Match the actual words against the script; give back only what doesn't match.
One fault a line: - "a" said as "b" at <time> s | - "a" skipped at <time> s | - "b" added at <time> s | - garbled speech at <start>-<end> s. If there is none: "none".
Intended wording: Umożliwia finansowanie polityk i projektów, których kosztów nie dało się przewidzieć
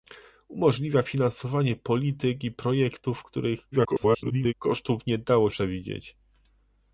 - garbled speech at 3.7-4.5 s
- "się" skipped at 5.5 s